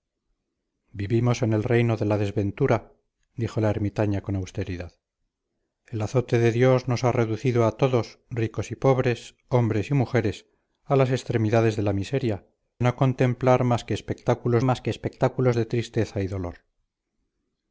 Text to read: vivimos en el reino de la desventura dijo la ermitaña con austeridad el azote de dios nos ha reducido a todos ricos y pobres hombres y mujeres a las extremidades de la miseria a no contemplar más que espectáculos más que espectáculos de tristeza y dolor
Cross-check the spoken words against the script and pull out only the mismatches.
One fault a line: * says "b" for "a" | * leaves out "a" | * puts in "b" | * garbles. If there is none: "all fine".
all fine